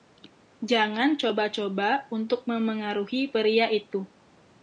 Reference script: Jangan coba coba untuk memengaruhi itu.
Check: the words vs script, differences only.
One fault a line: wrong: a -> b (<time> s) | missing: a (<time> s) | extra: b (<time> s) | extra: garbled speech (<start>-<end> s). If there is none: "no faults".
extra: pria (3.3 s)